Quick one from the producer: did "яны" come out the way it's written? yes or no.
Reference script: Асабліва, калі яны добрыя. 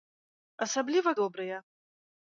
no